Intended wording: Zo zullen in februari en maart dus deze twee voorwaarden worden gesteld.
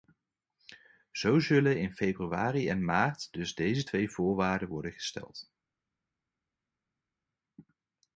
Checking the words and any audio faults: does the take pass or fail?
pass